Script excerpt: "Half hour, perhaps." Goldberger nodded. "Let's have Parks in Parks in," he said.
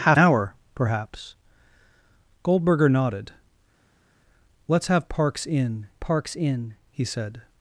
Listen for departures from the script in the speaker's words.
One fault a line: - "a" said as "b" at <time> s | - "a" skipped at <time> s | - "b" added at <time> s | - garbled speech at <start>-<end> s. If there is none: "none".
none